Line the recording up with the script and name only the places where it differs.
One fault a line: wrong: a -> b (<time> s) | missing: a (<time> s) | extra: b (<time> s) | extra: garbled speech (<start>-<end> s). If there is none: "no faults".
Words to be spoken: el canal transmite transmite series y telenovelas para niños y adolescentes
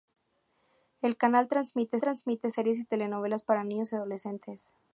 no faults